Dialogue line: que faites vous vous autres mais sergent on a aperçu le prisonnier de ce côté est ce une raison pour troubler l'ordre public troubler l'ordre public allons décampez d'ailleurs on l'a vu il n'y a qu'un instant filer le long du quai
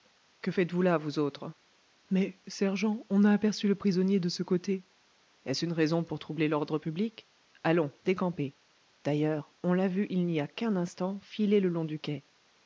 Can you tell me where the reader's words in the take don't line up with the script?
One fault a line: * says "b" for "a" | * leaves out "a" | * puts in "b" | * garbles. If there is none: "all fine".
* puts in "là"
* leaves out "troubler l'ordre public"